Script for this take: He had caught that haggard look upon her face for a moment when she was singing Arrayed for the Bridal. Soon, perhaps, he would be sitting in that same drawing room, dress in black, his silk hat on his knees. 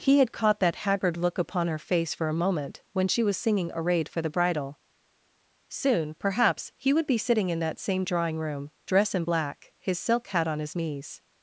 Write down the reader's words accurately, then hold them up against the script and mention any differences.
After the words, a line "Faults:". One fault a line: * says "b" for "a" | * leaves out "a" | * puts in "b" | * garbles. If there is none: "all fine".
He had caught that haggard look upon her face for a moment when she was singing Arrayed for the Bridal. Soon, perhaps, he would be sitting in that same drawing room, dress in black, his silk hat on his knees.
Faults:
all fine